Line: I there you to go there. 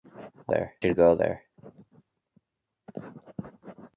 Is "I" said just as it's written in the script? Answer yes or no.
yes